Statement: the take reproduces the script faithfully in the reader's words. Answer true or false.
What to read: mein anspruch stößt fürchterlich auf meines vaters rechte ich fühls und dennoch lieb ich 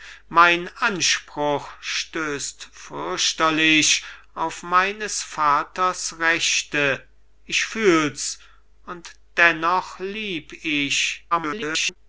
false